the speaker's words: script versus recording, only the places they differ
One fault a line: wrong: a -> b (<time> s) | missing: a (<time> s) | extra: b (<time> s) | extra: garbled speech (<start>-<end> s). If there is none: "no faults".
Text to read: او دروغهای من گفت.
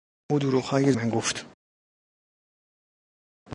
no faults